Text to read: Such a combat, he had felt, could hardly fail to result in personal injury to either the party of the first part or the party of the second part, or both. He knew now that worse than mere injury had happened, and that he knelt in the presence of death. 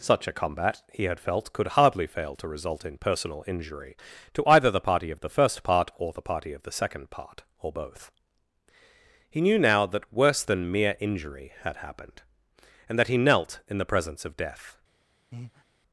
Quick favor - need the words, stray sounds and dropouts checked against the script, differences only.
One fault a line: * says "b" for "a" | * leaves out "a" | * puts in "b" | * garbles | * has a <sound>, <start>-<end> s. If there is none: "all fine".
* has a breath, 15.3-15.6 s